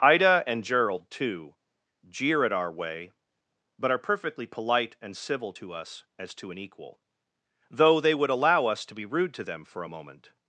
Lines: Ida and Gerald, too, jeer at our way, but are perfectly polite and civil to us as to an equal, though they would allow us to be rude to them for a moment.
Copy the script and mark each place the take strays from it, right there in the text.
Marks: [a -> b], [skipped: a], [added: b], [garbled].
Ida and Gerald, too, jeer at our way, but are perfectly polite and civil to us as to an equal, though they would allow us to be rude to them for a moment.